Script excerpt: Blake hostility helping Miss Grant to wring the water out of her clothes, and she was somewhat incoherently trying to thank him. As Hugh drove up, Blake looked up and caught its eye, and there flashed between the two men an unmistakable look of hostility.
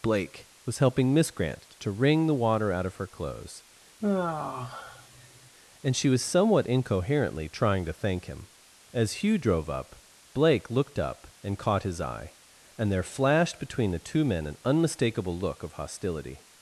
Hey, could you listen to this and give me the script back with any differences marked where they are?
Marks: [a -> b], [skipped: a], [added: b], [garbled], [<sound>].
Blake [hostility -> was] helping Miss Grant to wring the water out of her clothes, [sigh] and she was somewhat incoherently trying to thank him. As Hugh drove up, Blake looked up and caught [its -> his] eye, and there flashed between the two men an unmistakable look of hostility.